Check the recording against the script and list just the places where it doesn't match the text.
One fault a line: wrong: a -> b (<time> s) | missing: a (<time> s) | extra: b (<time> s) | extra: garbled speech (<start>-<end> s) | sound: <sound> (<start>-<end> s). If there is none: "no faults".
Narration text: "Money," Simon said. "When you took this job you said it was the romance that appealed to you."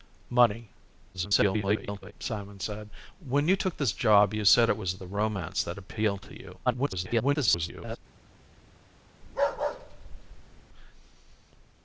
extra: garbled speech (1.1-2.1 s)
extra: garbled speech (6.7-8.0 s)
sound: bark (9.2-10.6 s)